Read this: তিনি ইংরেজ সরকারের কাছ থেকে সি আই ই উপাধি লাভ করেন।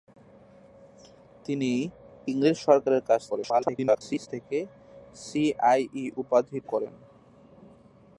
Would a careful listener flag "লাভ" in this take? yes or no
yes